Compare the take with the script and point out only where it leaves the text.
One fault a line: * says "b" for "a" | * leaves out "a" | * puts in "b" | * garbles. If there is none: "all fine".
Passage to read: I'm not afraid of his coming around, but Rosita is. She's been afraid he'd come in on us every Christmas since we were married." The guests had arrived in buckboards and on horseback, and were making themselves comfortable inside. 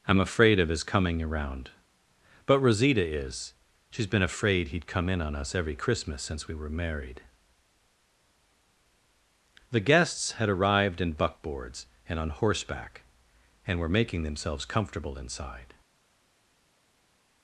* leaves out "not"